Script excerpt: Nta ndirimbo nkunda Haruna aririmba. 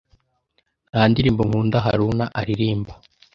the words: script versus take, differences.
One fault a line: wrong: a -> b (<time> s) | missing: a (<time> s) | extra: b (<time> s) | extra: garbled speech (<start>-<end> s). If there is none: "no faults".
no faults